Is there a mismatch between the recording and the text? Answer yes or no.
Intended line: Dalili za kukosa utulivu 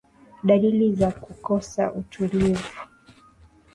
no